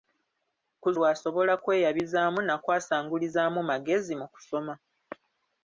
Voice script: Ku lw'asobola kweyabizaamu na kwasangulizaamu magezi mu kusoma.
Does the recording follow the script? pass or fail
pass